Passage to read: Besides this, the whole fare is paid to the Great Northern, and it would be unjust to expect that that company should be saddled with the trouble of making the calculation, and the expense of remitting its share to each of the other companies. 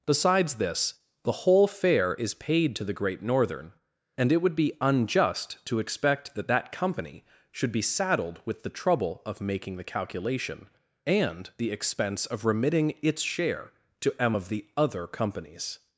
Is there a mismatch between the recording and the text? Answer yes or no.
yes